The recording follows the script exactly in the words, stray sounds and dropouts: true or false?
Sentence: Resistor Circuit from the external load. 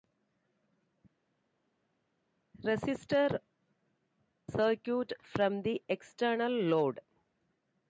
true